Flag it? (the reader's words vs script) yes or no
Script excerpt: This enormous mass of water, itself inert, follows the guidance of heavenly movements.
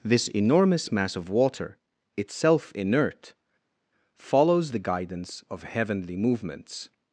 no